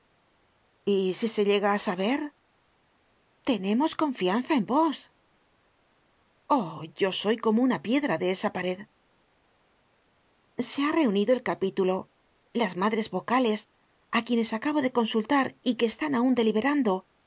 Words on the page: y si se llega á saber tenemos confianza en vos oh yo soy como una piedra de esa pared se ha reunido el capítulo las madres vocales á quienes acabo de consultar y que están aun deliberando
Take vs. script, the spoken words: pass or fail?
pass